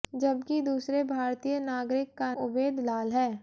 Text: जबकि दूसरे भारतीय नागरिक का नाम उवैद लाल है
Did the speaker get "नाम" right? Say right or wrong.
wrong